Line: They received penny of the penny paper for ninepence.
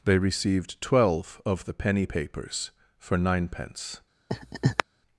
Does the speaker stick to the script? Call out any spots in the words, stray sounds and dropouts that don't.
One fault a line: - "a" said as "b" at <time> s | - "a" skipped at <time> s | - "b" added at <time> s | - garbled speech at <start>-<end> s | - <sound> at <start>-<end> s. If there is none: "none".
- "penny" said as "twelve" at 0.8 s
- "paper" said as "papers" at 2.0 s
- laugh at 4.3-4.8 s